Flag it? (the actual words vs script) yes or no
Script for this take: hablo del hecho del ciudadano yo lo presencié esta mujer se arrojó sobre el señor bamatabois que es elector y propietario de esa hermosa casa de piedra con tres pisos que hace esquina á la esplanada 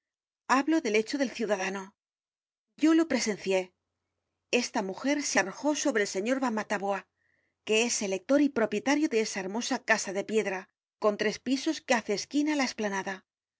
no